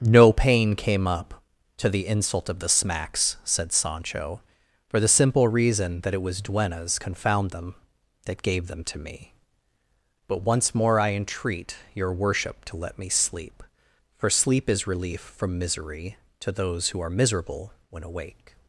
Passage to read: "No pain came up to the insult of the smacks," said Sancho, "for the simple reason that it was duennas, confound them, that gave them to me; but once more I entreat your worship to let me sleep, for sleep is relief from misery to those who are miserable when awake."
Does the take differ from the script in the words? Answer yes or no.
no